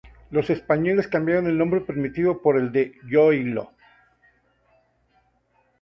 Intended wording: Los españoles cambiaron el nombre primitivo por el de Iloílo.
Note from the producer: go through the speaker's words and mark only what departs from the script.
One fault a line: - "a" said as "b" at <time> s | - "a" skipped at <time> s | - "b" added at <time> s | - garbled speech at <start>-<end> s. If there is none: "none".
none